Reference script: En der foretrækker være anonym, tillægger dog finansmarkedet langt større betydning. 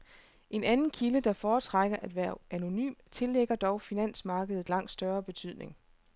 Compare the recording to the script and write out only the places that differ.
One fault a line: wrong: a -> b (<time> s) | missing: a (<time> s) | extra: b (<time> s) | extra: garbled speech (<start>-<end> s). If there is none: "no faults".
extra: anden kilde (0.6 s)
extra: at (2.0 s)